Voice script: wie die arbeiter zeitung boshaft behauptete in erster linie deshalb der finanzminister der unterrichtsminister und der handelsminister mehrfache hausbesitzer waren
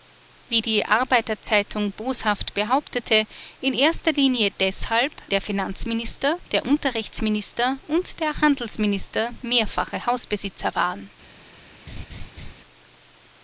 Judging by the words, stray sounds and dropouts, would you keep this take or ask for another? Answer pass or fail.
fail